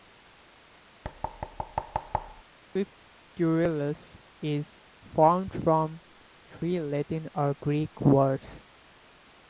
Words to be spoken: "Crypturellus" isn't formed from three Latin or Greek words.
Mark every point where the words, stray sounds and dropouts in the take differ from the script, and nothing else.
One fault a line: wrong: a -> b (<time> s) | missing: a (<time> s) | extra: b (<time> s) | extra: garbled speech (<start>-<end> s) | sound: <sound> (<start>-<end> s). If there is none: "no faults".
sound: thud (1.0-2.4 s)
wrong: isn't -> is (4.4 s)